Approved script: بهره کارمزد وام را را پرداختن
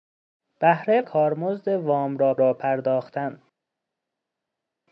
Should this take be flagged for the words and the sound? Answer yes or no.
no